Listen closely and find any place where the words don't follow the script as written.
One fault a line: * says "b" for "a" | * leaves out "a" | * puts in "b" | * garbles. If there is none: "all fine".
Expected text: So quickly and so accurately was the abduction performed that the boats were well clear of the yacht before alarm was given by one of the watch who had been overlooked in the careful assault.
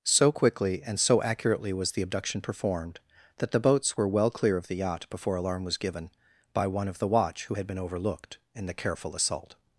all fine